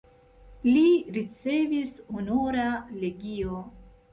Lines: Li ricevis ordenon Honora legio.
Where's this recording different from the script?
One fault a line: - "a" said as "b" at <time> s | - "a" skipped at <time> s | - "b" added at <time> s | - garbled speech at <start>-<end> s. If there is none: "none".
- "ordenon" skipped at 2.0 s